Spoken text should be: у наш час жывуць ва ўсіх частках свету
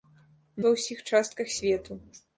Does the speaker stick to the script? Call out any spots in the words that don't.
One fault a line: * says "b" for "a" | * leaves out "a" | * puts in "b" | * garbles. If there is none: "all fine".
* leaves out "наш час жывуць"